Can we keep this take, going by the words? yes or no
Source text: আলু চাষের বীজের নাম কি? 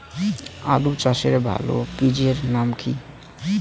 no